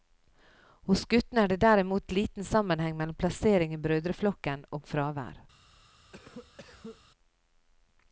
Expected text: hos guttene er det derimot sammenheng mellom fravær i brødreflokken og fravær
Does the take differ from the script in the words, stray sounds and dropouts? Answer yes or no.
yes